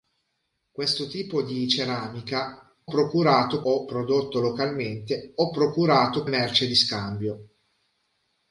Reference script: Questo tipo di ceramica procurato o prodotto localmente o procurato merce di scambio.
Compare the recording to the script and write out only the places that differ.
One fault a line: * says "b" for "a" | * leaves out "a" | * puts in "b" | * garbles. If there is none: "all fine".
all fine